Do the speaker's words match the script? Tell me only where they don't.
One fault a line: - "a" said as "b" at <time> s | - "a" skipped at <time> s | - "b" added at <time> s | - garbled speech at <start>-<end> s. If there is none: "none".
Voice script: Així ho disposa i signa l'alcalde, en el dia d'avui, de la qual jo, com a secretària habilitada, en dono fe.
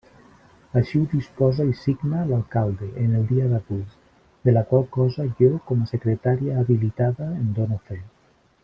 - "cosa" added at 5.0 s